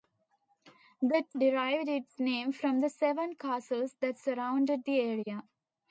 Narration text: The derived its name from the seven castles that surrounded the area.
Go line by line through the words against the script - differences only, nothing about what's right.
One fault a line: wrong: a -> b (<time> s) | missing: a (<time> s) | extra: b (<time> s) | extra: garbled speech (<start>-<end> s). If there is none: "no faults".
no faults